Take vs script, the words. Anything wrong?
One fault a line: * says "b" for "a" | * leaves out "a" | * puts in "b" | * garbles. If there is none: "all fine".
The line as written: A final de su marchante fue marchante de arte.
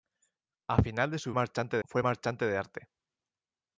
all fine